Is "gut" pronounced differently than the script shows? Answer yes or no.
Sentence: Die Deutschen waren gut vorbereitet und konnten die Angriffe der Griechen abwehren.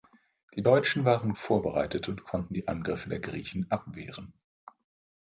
yes